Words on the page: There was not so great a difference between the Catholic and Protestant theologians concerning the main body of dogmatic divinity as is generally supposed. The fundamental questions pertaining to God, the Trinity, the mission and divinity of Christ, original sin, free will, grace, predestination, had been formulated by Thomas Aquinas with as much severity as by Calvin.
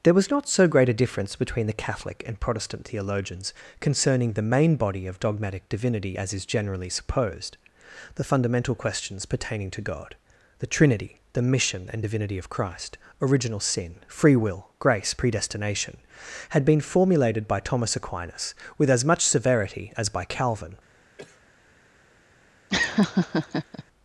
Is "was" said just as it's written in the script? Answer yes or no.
yes